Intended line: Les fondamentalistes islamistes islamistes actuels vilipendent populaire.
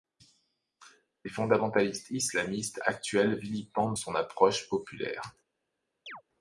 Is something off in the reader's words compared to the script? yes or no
yes